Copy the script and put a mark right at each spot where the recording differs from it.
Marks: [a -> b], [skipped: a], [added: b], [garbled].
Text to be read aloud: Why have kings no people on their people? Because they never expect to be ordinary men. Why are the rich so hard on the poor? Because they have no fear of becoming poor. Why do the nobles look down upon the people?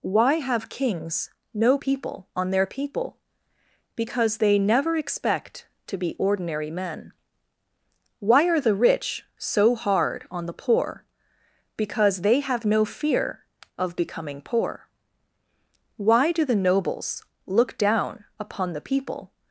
Why have kings no people on their people? Because they never expect to be ordinary men. Why are the rich so hard on the poor? Because they have no fear of becoming poor. Why do the nobles look down upon the people?